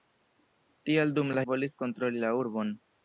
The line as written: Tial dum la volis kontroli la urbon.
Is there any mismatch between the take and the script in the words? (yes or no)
no